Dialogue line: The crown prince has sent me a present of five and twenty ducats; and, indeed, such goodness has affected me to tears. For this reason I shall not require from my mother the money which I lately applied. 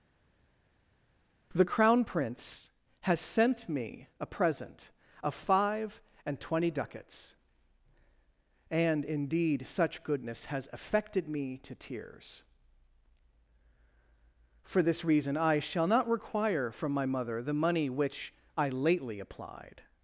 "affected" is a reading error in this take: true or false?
false